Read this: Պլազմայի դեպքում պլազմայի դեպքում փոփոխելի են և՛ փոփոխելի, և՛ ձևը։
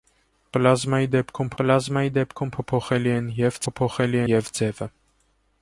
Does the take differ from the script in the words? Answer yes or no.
no